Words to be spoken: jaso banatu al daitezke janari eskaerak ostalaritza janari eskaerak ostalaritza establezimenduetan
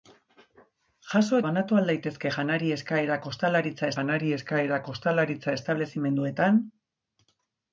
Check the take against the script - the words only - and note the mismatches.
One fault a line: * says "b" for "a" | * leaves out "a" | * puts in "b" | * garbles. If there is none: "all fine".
all fine